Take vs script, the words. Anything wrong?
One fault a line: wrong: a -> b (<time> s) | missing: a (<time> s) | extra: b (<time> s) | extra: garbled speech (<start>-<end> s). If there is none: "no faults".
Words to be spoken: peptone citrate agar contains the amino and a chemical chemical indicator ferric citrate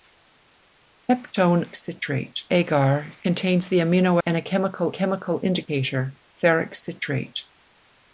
no faults